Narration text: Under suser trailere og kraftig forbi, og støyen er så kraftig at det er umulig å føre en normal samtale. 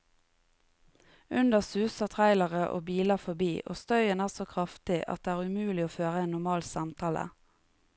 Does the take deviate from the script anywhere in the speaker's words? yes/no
yes